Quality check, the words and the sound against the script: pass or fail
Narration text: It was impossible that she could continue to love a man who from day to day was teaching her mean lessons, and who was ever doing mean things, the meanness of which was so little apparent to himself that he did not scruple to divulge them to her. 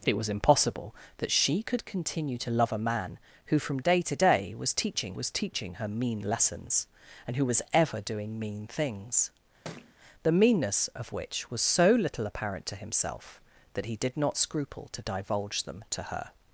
fail